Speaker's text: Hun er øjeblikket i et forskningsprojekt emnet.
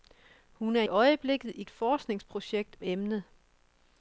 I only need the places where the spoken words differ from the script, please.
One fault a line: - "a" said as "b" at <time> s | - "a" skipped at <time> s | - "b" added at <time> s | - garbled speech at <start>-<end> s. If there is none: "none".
none